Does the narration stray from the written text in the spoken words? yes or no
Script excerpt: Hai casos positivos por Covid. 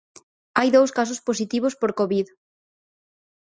yes